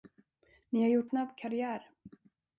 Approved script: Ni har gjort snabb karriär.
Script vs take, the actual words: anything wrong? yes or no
no